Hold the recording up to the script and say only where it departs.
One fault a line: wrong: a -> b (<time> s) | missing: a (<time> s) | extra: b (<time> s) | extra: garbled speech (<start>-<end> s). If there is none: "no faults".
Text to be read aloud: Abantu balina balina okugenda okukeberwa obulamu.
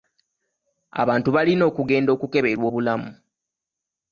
missing: balina (1.6 s)